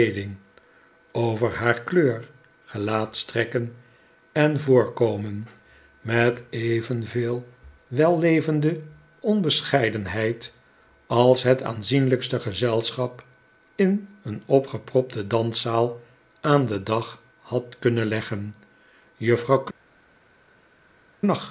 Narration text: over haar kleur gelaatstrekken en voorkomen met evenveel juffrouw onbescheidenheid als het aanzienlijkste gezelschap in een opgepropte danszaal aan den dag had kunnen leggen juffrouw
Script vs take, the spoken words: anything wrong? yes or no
yes